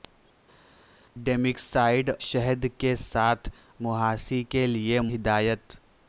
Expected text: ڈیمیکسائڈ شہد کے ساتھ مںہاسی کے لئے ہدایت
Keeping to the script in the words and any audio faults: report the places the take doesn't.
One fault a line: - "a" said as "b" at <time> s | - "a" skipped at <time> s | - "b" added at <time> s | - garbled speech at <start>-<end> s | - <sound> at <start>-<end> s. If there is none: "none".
none